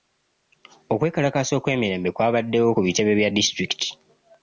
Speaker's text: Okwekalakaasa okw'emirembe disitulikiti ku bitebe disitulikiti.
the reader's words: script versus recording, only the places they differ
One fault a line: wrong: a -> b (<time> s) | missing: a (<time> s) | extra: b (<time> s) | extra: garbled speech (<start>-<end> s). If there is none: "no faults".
wrong: disitulikiti -> kwabaddewo (2.1 s)
extra: bya (3.2 s)